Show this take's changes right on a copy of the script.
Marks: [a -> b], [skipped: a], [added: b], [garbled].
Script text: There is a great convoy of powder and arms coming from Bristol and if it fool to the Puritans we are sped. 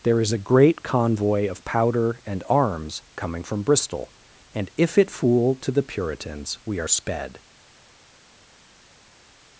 There is a great convoy of powder and arms coming from Bristol and if it fool to the Puritans we are sped.